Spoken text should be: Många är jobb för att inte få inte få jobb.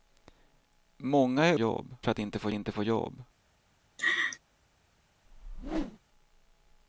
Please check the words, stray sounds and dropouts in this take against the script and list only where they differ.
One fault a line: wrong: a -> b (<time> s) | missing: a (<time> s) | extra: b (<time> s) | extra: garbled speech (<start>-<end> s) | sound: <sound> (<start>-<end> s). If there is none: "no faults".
sound: laugh (4.0-4.4 s)
sound: whoosh (5.3-6.0 s)